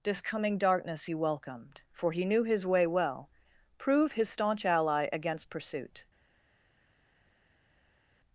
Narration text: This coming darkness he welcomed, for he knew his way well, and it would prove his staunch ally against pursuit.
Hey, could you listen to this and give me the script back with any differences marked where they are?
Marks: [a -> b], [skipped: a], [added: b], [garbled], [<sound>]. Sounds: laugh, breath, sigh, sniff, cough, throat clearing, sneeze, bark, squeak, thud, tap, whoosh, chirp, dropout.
This coming darkness he welcomed, for he knew his way well, [skipped: and it would] prove his staunch ally against pursuit.